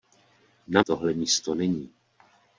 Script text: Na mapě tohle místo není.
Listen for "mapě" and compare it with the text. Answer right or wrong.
wrong